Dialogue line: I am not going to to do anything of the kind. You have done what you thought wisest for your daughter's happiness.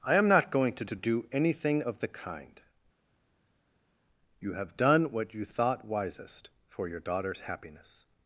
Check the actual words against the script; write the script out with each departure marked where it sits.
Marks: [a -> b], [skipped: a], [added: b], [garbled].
I am not going to to do anything of the kind. You have done what you thought wisest for your daughter's happiness.